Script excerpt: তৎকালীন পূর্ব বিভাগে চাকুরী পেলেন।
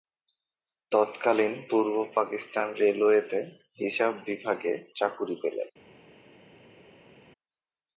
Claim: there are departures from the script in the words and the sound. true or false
true